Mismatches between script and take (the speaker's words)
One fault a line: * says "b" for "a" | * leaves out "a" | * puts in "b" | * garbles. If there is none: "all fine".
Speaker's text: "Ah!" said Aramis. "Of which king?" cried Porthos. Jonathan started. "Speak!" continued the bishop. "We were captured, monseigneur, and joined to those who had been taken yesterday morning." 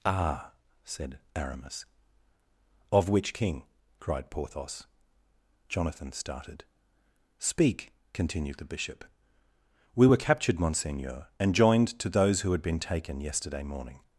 all fine